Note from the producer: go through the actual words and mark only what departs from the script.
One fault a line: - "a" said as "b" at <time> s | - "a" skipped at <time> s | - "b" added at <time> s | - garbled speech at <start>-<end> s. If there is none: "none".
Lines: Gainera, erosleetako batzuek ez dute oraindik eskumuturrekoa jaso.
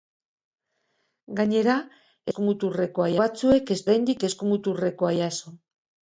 - "erosleetako" said as "eskumuturrekoa" at 2.3 s
- "dute" skipped at 3.8 s